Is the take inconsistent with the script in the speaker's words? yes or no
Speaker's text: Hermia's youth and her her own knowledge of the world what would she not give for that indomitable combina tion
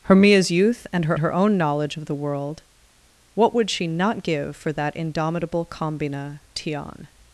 no